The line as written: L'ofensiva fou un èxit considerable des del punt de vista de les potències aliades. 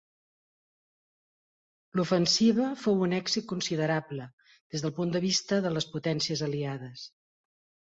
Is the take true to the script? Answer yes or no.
yes